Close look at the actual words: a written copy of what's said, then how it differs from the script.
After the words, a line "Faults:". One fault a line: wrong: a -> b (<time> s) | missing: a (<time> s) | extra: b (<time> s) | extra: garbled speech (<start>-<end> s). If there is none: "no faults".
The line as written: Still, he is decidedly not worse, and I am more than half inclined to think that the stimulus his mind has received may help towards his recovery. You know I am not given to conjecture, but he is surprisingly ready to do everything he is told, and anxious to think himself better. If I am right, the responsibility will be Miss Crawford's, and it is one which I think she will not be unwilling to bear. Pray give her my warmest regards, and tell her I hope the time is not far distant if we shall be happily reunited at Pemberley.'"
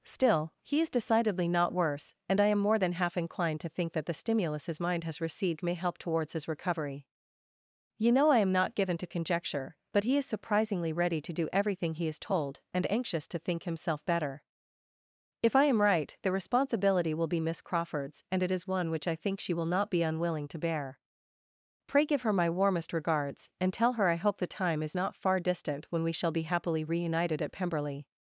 Still, he is decidedly not worse, and I am more than half inclined to think that the stimulus his mind has received may help towards his recovery. You know I am not given to conjecture, but he is surprisingly ready to do everything he is told, and anxious to think himself better. If I am right, the responsibility will be Miss Crawford's, and it is one which I think she will not be unwilling to bear. Pray give her my warmest regards, and tell her I hope the time is not far distant when we shall be happily reunited at Pemberley.'"
Faults:
wrong: if -> when (25.9 s)